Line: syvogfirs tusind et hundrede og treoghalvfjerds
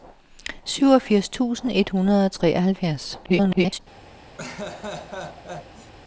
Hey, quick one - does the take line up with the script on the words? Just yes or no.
no